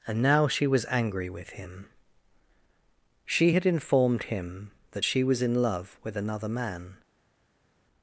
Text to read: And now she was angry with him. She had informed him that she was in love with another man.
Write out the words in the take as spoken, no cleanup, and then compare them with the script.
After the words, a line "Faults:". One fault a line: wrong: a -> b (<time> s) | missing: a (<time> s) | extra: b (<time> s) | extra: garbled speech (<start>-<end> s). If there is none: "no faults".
And now she was angry with him. She had informed him that she was in love with another man.
Faults:
no faults